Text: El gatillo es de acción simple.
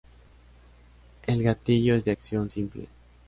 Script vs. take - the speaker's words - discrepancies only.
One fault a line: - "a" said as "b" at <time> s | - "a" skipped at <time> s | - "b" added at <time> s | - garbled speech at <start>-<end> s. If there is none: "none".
none